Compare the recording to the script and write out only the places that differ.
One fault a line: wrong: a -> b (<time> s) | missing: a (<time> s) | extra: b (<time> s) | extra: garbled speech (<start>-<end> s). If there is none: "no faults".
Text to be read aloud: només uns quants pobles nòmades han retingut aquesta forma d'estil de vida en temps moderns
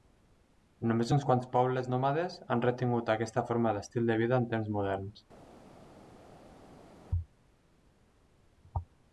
no faults